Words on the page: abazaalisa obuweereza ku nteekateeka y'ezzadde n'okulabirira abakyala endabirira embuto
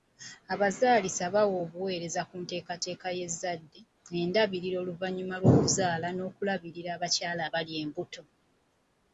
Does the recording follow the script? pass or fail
fail